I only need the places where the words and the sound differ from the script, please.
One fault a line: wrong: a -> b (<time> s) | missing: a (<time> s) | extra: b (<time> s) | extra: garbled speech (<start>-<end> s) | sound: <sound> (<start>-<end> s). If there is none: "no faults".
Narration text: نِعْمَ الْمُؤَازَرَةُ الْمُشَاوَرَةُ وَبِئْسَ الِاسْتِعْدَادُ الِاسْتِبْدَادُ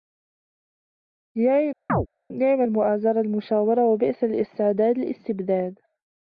sound: chirp (1.9-2.1 s)